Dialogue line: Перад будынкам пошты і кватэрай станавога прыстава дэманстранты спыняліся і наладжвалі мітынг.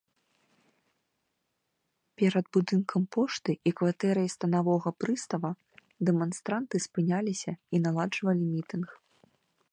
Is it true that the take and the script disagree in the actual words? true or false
false